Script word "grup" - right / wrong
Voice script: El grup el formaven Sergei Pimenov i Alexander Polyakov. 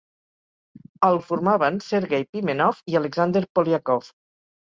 wrong